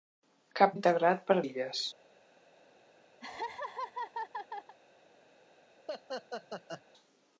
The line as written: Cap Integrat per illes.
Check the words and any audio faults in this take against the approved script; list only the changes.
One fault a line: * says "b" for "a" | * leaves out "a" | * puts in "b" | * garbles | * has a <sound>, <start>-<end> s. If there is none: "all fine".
* has a laugh, 3.2-4.8 s
* has a laugh, 5.9-6.8 s